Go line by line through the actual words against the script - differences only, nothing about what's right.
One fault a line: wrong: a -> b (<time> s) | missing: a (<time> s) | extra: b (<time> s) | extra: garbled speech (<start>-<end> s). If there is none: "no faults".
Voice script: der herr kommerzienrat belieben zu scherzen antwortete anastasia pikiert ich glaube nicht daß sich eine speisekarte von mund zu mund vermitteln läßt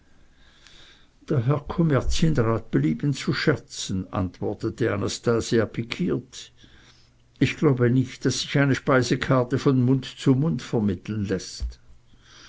no faults